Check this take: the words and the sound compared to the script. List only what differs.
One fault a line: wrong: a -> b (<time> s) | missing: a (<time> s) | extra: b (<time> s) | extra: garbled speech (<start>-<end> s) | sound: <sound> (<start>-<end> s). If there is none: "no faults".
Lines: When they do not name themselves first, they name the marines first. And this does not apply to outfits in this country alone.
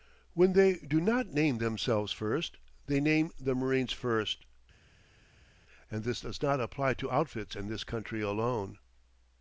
no faults